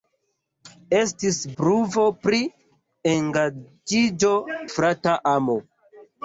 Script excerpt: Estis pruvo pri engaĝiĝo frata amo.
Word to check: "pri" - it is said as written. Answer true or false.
true